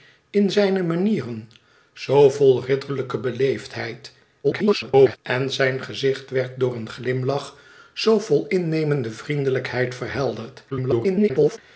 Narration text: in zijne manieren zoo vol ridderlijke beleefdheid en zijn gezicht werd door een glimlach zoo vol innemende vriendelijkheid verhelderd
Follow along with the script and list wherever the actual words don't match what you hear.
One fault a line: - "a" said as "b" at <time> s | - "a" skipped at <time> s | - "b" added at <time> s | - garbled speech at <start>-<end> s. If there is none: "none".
- garbled speech at 4.4-5.2 s
- garbled speech at 10.7-11.6 s